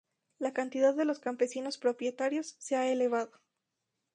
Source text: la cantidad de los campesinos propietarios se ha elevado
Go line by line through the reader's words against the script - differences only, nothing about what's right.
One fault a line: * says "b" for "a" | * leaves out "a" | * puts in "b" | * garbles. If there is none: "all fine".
all fine